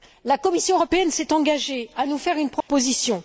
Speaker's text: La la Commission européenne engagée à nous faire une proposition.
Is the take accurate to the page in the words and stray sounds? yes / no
no